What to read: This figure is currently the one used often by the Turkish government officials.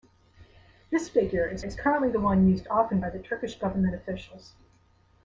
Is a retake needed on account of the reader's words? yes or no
yes